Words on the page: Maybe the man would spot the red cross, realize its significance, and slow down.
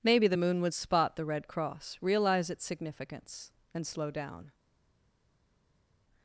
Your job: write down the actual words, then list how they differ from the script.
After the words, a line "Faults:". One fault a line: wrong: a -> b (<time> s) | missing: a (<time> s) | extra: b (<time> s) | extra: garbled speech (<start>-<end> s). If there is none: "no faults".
Maybe the moon would spot the red cross, realize its significance, and slow down.
Faults:
wrong: man -> moon (0.3 s)